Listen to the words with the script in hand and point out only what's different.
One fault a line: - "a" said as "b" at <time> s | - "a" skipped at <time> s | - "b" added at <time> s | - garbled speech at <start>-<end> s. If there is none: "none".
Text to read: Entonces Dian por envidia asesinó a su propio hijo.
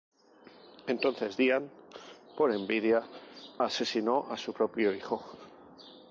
none